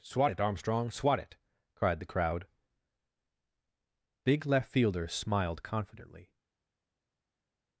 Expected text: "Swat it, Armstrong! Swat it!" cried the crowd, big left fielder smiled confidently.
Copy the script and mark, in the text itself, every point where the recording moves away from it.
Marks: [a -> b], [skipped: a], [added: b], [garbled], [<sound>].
"Swat it, Armstrong! Swat it!" cried the crowd, big left fielder smiled confidently.